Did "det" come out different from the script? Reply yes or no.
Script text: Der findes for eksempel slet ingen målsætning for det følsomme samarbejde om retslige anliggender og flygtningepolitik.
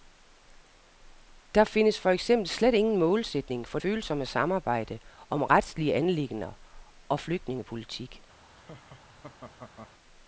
yes